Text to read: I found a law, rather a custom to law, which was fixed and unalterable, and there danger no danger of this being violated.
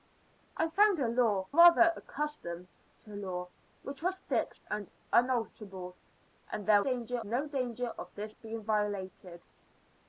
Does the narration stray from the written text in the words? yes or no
no